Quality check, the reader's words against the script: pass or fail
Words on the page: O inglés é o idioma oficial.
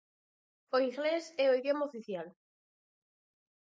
pass